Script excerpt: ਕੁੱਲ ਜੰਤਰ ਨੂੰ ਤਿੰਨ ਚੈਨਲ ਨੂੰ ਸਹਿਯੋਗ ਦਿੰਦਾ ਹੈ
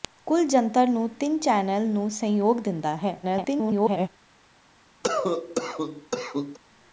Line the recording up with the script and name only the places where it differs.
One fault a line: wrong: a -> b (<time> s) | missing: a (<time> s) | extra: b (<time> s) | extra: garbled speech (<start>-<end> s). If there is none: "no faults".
extra: garbled speech (3.2-4.1 s)